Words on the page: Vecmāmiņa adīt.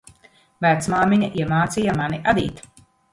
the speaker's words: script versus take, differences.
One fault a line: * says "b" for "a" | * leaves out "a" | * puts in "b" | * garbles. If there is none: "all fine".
* puts in "iemācīja mani"